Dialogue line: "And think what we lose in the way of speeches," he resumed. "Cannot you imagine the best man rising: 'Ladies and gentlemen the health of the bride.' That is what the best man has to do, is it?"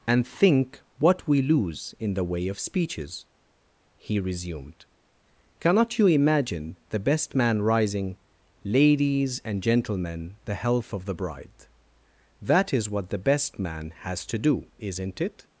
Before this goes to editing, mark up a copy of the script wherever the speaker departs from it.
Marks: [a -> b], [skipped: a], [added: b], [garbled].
"And think what we lose in the way of speeches," he resumed. "Cannot you imagine the best man rising: 'Ladies and gentlemen the health of the bride.' That is what the best man has to do, [is -> isn't] it?"